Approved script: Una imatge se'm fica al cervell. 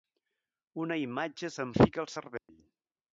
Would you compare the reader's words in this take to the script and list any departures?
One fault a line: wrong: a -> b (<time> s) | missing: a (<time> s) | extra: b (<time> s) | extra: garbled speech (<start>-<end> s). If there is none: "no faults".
no faults